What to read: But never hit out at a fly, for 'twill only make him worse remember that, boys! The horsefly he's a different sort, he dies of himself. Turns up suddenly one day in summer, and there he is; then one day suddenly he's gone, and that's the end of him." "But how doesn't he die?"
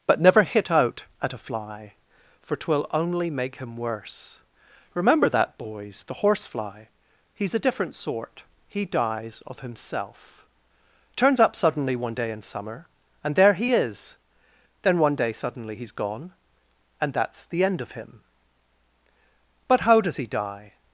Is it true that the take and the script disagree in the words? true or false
true